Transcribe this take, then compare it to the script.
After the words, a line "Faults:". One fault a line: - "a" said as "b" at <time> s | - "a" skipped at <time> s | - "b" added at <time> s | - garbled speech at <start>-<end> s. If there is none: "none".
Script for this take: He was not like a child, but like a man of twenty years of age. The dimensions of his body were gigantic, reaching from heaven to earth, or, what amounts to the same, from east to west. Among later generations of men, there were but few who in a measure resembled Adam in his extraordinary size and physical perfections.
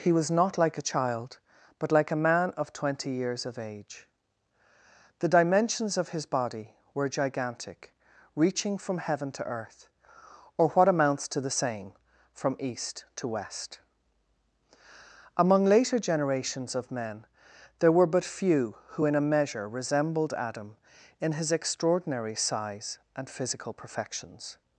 He was not like a child, but like a man of twenty years of age. The dimensions of his body were gigantic, reaching from heaven to earth, or, what amounts to the same, from east to west. Among later generations of men, there were but few who in a measure resembled Adam in his extraordinary size and physical perfections.
Faults:
none